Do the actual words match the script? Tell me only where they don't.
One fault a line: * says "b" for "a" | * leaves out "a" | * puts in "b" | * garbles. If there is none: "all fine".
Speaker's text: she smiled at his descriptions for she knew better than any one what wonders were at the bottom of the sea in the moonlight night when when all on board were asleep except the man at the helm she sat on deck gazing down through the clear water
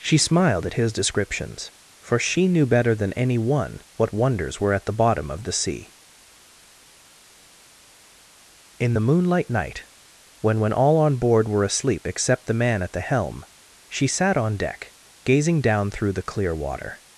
all fine